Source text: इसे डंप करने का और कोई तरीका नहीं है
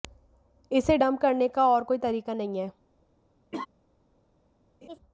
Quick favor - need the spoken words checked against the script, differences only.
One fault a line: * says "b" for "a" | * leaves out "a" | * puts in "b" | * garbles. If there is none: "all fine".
all fine